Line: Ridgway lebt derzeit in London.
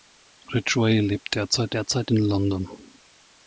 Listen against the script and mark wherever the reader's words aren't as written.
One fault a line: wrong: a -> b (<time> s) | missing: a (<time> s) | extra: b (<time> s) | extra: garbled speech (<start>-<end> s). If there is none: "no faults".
extra: derzeit (1.7 s)